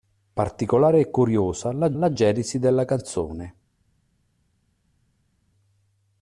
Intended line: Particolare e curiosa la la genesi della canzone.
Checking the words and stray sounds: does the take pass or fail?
pass